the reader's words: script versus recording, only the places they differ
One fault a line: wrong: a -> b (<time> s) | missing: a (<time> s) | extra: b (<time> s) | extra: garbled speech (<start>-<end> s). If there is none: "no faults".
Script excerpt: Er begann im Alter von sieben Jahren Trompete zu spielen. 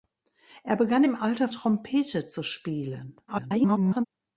missing: von sieben Jahren (1.5 s)
extra: garbled speech (3.3-4.1 s)